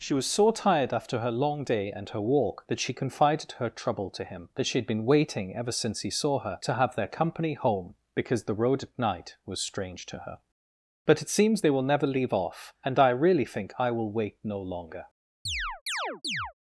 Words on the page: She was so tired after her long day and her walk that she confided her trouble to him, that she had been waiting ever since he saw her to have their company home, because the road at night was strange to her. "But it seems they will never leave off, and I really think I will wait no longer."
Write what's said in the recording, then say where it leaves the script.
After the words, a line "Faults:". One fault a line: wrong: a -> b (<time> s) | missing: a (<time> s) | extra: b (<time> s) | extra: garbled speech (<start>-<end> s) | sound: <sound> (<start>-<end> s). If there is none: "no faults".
She was so tired after her long day and her walk that she confided her trouble to him, that she had been waiting ever since he saw her to have their company home, because the road at night was strange to her. "But it seems they will never leave off, and I really think I will wait no longer."
Faults:
sound: chirp (15.5-16.5 s)